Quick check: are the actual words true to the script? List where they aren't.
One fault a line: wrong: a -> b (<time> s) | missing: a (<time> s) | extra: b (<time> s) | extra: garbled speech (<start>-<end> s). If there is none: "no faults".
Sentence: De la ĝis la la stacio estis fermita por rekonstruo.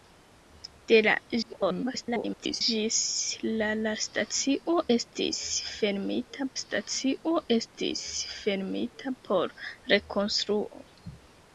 extra: garbled speech (1.4-2.6 s)
extra: stacio estis fermita (6.6 s)